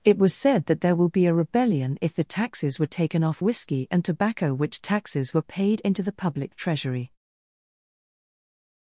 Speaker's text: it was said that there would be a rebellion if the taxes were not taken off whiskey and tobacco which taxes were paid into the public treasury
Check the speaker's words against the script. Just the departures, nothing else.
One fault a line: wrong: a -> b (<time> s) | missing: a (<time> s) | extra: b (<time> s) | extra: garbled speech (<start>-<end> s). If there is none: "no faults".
wrong: would -> will (0.9 s)
missing: not (2.9 s)